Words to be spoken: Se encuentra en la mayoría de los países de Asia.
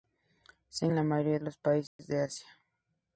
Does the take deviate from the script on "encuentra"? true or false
true